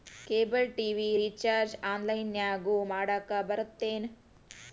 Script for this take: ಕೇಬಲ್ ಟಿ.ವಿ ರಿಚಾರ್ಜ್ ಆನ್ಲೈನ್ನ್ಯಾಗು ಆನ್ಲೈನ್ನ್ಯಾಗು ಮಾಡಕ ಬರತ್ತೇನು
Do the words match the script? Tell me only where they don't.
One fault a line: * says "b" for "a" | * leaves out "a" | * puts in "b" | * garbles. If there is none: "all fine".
* leaves out "ಆನ್ಲೈನ್ನ್ಯಾಗು"